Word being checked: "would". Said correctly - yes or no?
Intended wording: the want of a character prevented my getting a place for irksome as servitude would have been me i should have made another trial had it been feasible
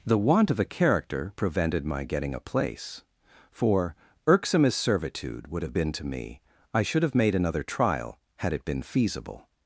yes